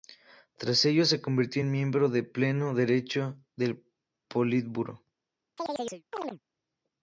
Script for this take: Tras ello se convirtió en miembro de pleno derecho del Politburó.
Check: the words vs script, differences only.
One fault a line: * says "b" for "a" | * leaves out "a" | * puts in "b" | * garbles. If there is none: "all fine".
all fine